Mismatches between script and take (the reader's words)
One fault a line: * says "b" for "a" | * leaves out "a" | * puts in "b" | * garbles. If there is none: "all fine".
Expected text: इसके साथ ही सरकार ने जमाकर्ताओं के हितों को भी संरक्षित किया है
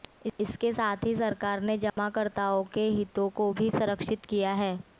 all fine